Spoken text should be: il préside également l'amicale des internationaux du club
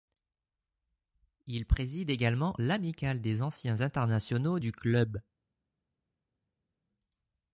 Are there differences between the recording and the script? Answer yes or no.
yes